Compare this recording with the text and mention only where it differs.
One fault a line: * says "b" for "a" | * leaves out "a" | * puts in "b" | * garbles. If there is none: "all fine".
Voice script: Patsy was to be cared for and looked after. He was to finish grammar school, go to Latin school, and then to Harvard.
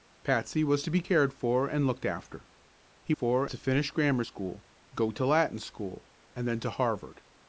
* says "for" for "was"